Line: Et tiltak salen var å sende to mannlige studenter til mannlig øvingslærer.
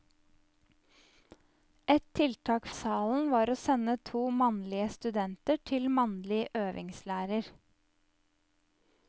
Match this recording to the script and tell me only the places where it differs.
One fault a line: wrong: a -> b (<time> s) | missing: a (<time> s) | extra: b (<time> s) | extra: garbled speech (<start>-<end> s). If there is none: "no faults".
no faults